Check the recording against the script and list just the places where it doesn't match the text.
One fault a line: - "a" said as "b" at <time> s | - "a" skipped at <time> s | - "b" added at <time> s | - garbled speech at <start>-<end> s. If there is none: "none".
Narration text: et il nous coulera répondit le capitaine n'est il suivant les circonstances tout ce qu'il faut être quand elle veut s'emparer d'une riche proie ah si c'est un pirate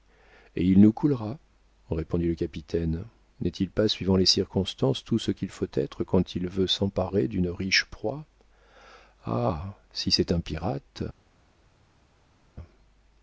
- "pas" added at 3.7 s
- "elle" said as "il" at 6.3 s